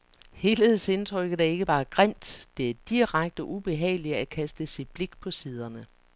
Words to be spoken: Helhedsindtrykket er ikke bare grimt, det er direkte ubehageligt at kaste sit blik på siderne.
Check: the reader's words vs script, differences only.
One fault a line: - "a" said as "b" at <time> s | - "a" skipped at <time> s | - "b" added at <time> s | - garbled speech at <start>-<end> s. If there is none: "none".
none